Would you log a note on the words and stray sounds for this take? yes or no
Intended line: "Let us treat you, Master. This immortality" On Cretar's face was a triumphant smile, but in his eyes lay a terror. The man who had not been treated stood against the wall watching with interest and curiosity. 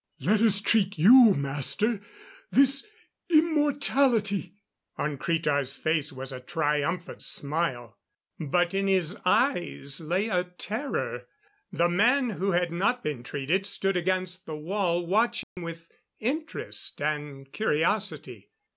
yes